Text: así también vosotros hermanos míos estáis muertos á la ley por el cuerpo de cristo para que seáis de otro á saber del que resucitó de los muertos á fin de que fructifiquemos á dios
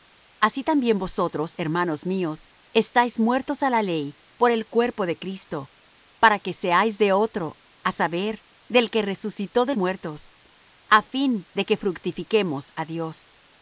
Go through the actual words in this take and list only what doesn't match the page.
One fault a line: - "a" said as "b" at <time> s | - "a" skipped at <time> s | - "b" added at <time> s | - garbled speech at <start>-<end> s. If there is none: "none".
- "los" skipped at 9.8 s